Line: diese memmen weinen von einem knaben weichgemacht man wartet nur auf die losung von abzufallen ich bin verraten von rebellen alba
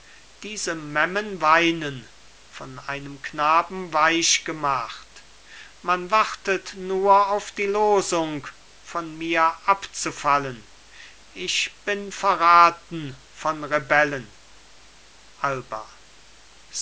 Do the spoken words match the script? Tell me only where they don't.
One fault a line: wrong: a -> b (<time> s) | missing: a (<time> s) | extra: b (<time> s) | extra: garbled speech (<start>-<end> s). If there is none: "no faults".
extra: mir (9.2 s)